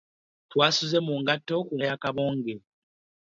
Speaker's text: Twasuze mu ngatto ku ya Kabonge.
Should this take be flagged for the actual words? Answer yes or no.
no